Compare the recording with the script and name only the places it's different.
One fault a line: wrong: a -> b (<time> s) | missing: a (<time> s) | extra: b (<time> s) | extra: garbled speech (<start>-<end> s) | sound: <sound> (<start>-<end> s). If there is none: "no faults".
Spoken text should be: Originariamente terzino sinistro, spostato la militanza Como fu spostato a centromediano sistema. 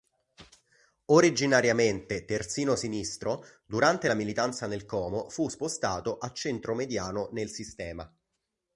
wrong: spostato -> durante (3.7 s)
extra: nel (4.7 s)
extra: nel (7.3 s)